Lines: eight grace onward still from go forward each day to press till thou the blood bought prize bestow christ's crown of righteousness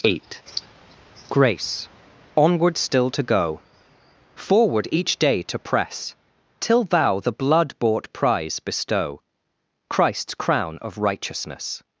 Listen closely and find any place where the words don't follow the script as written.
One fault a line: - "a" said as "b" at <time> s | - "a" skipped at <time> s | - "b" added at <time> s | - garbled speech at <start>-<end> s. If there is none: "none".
- "from" said as "to" at 3.1 s